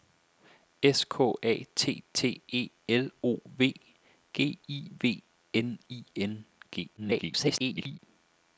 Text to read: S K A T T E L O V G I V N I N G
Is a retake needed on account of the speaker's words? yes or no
yes